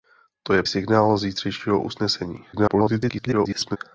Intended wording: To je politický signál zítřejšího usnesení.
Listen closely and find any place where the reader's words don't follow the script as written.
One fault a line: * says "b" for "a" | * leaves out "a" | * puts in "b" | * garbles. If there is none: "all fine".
* leaves out "politický"
* garbles